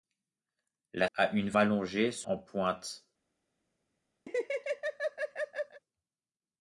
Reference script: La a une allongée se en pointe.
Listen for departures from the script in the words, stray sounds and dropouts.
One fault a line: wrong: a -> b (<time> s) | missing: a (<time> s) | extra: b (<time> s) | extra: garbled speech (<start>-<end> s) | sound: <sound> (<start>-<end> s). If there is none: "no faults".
sound: laugh (4.3-5.8 s)